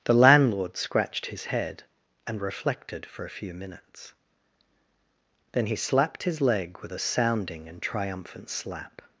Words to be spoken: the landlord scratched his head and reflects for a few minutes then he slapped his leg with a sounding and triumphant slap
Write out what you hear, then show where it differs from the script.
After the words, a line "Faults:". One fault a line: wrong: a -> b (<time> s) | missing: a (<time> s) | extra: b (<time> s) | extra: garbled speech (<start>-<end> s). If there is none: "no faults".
the landlord scratched his head and reflected for a few minutes then he slapped his leg with a sounding and triumphant slap
Faults:
wrong: reflects -> reflected (2.4 s)